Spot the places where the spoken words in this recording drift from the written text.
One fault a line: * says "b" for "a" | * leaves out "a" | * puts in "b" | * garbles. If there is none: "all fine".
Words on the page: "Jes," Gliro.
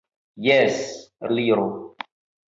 all fine